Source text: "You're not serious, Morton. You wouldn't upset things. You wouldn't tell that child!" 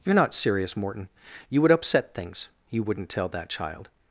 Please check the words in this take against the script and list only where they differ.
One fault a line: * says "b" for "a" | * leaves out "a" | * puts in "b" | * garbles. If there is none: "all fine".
* says "would" for "wouldn't"